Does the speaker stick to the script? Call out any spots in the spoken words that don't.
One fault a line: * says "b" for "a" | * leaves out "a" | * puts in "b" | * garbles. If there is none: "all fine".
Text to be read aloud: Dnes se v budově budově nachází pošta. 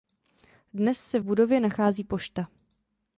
* leaves out "budově"